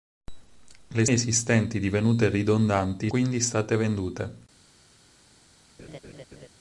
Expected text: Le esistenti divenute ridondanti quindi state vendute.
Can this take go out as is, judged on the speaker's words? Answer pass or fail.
pass